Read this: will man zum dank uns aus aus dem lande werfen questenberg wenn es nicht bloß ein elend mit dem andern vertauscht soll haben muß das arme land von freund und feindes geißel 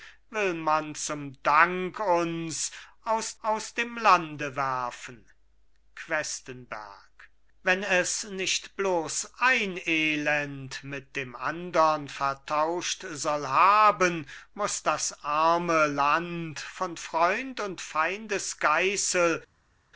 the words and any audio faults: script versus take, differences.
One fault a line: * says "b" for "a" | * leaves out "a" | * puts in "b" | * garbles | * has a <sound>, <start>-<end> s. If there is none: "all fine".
all fine